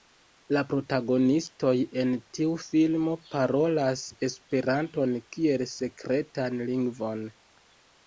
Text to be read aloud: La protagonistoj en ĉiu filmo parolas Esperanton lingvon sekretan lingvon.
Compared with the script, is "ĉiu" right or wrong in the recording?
wrong